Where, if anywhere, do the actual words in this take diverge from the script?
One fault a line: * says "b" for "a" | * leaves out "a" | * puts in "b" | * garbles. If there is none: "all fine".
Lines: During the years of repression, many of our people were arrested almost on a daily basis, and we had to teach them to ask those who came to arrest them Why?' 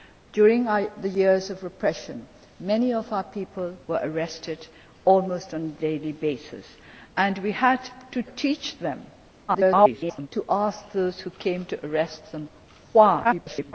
* garbles
* garbles